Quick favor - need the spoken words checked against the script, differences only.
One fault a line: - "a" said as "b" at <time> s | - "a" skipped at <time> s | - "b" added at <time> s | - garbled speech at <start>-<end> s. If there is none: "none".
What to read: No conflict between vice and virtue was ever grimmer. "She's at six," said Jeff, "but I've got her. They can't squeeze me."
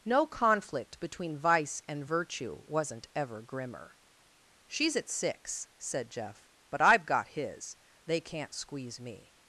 - "was" said as "wasn't" at 2.7 s
- "her" said as "his" at 7.3 s